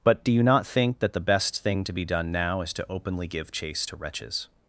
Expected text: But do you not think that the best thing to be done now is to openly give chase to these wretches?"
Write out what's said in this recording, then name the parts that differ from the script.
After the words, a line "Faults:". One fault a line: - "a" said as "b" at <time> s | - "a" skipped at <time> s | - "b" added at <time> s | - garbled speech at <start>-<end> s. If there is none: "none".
But do you not think that the best thing to be done now is to openly give chase to wretches?"
Faults:
- "these" skipped at 4.0 s